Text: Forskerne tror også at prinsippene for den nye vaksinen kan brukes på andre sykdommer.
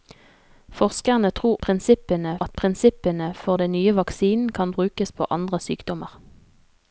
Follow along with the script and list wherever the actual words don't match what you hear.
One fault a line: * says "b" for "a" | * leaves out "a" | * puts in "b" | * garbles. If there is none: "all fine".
* says "prinsippene" for "også"